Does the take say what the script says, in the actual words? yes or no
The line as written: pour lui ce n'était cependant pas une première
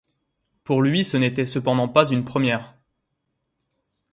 yes